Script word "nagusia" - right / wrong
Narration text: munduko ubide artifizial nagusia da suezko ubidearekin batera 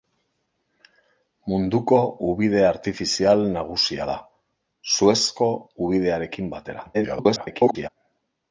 right